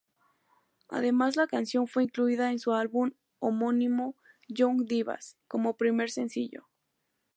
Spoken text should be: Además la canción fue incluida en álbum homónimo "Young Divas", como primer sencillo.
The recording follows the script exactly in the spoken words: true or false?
false